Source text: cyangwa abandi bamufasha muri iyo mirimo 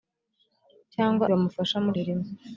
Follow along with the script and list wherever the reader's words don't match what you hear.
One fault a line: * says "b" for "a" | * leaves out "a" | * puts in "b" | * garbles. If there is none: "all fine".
* leaves out "abandi"
* leaves out "iyo"